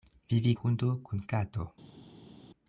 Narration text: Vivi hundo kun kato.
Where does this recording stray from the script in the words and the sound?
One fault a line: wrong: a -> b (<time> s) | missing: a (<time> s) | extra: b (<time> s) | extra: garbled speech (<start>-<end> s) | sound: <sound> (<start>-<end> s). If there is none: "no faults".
no faults